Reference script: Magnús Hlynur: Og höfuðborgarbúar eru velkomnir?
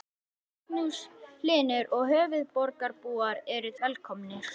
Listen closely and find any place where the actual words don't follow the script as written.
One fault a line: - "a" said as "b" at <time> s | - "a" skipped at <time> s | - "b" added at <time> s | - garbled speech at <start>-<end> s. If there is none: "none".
none